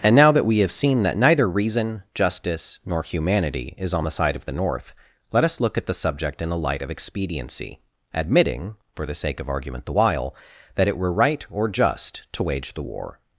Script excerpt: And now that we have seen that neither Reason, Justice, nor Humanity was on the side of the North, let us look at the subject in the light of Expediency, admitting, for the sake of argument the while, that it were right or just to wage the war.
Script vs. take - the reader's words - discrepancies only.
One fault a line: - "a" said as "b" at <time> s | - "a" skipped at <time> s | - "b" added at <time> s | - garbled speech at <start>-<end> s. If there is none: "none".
- "was" said as "is" at 3.8 s